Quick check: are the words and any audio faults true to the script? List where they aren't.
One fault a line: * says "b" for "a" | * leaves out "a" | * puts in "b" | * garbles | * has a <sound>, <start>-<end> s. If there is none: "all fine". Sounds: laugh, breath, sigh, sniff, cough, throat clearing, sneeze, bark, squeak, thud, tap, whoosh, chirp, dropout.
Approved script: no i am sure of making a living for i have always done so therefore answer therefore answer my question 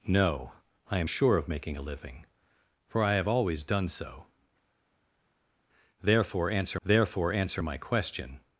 all fine